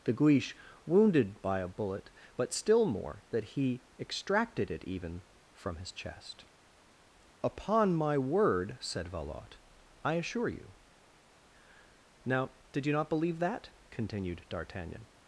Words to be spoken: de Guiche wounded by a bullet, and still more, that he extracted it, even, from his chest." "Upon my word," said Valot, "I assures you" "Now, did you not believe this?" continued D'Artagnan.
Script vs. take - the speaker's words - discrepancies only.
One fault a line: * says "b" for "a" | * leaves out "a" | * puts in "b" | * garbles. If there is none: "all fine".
* says "but" for "and"
* says "assure" for "assures"
* says "that" for "this"